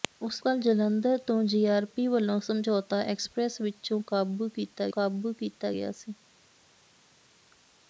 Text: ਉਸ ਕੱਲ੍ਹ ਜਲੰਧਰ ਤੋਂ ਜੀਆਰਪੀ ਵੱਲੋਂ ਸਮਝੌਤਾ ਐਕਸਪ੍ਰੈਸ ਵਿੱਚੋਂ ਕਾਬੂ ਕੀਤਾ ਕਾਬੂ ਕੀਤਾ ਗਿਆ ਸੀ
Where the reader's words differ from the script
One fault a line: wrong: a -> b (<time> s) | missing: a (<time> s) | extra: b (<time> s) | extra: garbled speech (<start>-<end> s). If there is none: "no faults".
no faults